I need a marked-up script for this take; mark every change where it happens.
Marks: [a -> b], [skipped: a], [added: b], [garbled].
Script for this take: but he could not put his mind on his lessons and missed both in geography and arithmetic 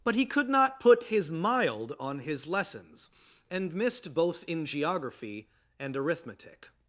but he could not put his [mind -> mild] on his lessons and missed both in geography and arithmetic